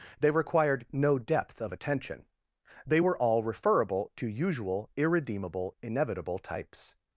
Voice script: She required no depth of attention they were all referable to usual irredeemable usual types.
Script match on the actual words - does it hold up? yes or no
no